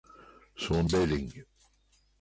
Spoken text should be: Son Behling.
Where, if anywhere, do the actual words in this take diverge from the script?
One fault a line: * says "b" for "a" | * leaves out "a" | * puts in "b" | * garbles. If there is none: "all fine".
all fine